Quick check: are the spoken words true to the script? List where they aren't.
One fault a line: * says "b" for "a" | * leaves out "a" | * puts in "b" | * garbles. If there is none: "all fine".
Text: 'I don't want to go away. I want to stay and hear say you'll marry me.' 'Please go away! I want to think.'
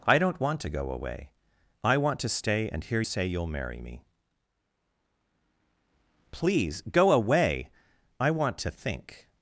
all fine